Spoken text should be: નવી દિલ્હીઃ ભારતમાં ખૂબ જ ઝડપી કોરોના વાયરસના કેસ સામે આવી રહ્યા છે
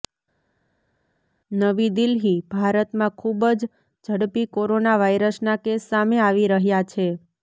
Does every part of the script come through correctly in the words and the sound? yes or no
yes